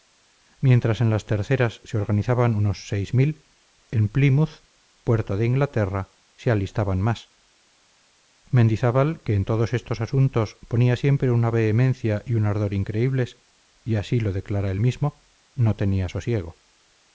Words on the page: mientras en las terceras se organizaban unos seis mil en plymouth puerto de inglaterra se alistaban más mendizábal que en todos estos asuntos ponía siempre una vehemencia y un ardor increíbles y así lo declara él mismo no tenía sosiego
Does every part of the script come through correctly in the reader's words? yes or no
yes